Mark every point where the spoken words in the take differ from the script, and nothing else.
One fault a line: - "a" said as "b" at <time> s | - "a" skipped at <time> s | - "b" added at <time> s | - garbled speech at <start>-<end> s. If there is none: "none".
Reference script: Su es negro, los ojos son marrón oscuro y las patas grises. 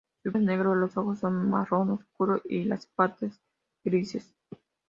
none